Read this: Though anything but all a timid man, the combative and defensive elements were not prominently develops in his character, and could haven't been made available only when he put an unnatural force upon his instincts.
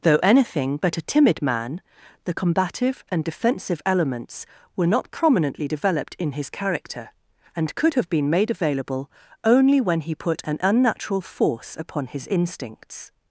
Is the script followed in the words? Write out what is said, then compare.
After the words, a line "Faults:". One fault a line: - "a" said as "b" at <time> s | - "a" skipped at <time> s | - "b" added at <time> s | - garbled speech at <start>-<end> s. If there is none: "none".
Though anything but a timid man, the combative and defensive elements were not prominently developed in his character, and could have been made available only when he put an unnatural force upon his instincts.
Faults:
- "all" skipped at 1.0 s
- "develops" said as "developed" at 5.6 s
- "haven't" said as "have" at 7.9 s